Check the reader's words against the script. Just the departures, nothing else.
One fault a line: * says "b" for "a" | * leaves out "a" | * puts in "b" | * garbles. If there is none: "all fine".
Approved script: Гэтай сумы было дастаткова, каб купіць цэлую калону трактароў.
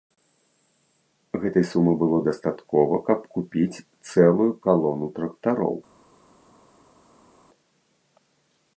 all fine